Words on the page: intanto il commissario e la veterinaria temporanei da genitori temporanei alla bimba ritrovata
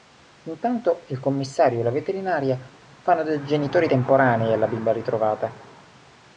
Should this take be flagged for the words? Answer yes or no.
yes